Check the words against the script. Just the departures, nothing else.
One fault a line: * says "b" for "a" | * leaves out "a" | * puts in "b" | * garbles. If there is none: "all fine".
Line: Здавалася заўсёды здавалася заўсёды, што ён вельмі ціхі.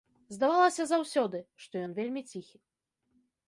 * leaves out "здавалася заўсёды"